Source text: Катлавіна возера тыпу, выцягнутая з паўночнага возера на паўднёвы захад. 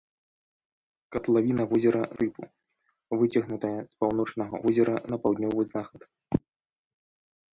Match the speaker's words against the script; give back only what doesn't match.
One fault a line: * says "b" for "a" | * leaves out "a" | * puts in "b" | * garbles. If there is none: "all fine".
all fine